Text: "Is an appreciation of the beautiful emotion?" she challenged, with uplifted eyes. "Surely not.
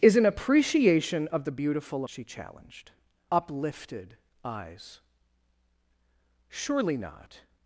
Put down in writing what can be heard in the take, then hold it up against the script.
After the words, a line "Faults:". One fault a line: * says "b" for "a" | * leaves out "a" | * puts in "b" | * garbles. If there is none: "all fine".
"Is an appreciation of the beautiful?" she challenged, uplifted eyes. "Surely not.
Faults:
* leaves out "emotion"
* leaves out "with"